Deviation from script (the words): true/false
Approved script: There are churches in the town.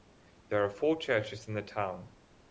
true